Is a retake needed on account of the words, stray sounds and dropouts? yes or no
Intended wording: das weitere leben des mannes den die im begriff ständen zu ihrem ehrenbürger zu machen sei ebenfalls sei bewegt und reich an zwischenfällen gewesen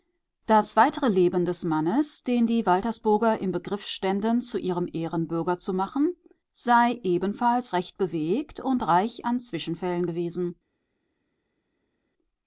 yes